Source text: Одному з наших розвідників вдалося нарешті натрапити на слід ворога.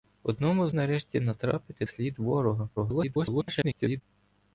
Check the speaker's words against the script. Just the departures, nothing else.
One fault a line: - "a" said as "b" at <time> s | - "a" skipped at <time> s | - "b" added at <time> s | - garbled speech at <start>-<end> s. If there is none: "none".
- "наших розвідників вдалося" skipped at 0.7 s
- "на" skipped at 1.9 s
- garbled speech at 2.8-4.0 s